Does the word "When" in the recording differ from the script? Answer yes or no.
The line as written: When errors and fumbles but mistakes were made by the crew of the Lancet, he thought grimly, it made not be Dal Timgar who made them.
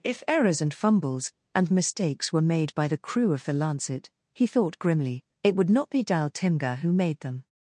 yes